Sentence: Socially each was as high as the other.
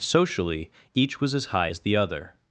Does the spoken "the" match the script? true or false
true